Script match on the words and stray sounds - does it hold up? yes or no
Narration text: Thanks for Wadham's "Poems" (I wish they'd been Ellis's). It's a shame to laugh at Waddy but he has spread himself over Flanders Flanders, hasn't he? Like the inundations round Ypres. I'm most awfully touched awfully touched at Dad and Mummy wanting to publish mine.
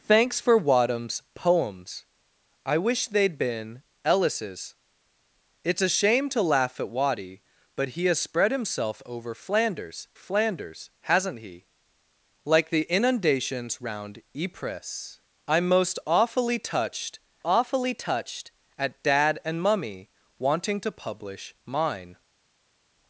yes